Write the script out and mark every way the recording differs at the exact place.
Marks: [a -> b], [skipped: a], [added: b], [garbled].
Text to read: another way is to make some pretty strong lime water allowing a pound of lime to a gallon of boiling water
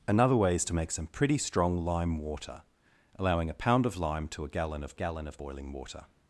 another way is to make some pretty strong lime water allowing a pound of lime to a gallon of [added: gallon of] boiling water